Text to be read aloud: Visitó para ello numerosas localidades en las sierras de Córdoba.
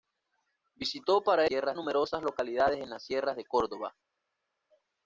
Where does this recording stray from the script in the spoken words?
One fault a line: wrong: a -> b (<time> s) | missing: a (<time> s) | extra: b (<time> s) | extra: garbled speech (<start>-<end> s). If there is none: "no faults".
wrong: ello -> sierras (1.4 s)